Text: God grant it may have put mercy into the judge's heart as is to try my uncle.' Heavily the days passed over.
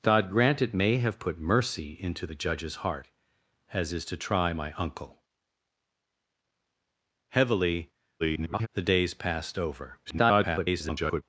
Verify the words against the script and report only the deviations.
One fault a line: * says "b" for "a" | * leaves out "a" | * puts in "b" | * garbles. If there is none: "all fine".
* garbles
* garbles